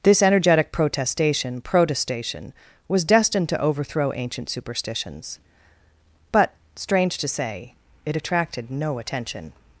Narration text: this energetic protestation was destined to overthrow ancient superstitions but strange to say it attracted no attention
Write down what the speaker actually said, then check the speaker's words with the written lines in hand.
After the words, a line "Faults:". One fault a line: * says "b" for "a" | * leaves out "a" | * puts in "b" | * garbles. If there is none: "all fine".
this energetic protestation protestation was destined to overthrow ancient superstitions but strange to say it attracted no attention
Faults:
* puts in "protestation"